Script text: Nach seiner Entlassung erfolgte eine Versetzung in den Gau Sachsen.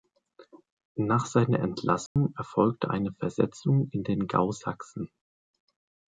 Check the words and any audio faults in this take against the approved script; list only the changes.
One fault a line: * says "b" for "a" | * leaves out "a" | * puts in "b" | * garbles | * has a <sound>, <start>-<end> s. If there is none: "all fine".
* has a dropout, 2.1-2.2 s